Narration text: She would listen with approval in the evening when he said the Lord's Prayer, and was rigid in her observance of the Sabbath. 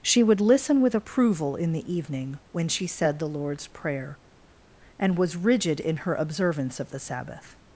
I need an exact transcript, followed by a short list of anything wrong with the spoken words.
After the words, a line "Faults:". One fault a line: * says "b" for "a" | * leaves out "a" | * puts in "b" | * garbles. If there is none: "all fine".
She would listen with approval in the evening when she said the Lord's Prayer, and was rigid in her observance of the Sabbath.
Faults:
* says "she" for "he"